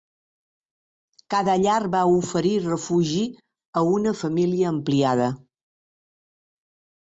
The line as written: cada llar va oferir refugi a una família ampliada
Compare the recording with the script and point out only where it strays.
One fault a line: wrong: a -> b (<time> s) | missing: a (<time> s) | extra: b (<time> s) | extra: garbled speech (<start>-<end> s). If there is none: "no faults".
no faults